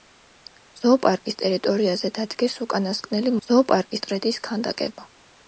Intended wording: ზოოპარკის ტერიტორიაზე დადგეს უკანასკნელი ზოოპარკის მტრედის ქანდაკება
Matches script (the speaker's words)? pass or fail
pass